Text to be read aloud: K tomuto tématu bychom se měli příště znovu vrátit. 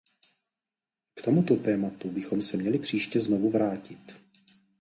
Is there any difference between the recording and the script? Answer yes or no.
no